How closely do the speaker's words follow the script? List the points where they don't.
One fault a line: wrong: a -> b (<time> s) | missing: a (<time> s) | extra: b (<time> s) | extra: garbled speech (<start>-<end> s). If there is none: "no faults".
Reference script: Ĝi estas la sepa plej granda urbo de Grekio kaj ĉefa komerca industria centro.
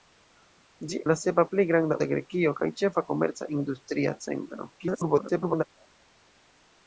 missing: estas (1.0 s)
missing: urbo (2.0 s)
extra: garbled speech (4.8-5.6 s)